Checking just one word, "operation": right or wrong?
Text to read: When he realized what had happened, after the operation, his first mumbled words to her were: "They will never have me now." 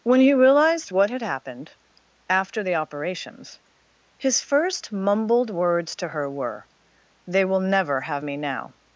wrong